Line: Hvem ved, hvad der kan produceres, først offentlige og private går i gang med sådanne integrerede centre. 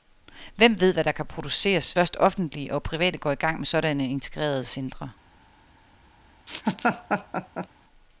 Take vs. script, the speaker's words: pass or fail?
pass